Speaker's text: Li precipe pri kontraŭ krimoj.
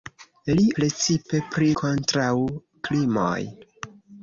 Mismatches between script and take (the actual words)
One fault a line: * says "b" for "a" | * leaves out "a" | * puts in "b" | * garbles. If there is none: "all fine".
all fine